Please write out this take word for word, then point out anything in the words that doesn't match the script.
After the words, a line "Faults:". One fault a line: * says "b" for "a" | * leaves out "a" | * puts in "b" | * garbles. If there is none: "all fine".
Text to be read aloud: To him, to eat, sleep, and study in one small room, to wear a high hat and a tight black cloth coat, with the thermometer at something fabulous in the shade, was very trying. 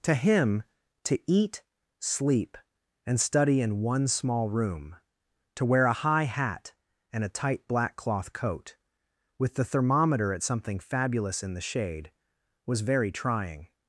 To him, to eat, sleep, and study in one small room, to wear a high hat and a tight black cloth coat, with the thermometer at something fabulous in the shade, was very trying.
Faults:
all fine